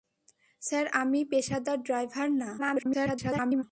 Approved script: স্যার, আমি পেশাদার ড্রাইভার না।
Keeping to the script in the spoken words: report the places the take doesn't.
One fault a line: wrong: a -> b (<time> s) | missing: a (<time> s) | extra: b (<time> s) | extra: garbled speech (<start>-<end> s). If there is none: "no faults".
extra: garbled speech (2.6-3.6 s)